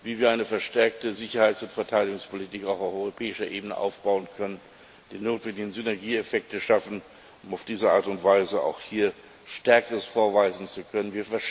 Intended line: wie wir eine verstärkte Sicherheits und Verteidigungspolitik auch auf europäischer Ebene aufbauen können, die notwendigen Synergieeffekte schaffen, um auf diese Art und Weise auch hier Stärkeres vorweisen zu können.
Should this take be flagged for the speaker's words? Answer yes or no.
no